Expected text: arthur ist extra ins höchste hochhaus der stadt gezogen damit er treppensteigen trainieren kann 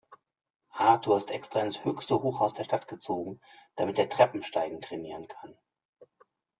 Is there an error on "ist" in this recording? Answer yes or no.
no